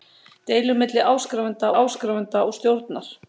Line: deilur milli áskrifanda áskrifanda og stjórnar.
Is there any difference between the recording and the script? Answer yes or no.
no